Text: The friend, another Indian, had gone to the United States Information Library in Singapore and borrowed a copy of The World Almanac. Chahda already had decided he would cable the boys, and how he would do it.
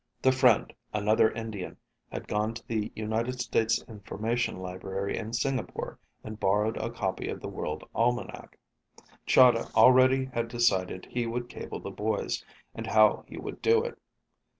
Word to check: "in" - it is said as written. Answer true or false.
true